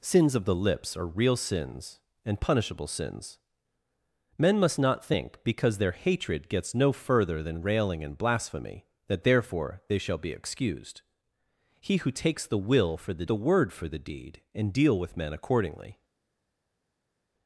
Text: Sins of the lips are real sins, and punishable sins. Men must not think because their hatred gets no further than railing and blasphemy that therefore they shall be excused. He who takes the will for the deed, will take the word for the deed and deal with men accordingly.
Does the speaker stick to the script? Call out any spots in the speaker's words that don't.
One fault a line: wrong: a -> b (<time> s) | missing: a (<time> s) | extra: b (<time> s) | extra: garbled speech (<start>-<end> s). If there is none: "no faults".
missing: deed will take (13.3 s)